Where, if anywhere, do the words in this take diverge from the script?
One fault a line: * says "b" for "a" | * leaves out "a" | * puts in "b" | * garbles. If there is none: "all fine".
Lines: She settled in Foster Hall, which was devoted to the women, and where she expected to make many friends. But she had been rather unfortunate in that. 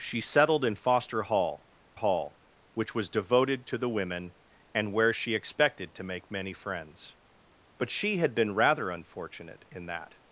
* puts in "Hall"